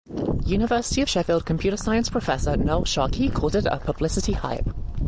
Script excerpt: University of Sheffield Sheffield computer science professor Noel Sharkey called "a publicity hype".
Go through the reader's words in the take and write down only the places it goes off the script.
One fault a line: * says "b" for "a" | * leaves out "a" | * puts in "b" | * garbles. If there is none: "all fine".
* leaves out "Sheffield"
* puts in "it"